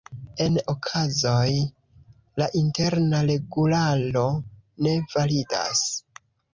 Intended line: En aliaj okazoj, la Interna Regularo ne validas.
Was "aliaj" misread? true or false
true